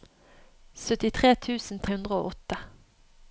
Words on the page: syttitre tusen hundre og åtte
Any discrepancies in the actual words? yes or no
no